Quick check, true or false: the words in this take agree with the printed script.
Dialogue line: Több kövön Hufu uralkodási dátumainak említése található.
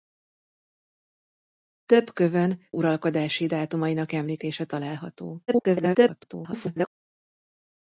false